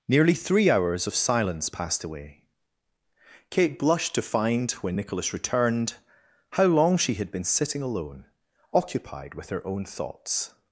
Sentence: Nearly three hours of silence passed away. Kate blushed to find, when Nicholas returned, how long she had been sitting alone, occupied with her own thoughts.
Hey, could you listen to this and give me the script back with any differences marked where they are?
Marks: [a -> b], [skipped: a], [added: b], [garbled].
Nearly three hours of silence passed away. Kate blushed to find, when Nicholas returned, how long she had been sitting alone, occupied with her own thoughts.